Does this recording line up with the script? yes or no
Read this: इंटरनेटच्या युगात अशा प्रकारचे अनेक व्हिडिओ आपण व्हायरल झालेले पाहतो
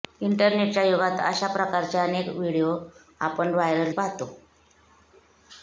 no